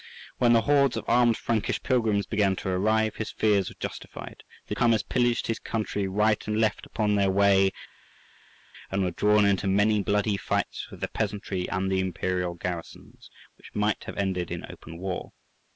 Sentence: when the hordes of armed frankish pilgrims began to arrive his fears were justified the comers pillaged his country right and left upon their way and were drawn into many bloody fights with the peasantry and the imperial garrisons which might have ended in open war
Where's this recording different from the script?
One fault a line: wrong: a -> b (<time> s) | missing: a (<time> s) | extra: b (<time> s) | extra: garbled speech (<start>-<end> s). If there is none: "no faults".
no faults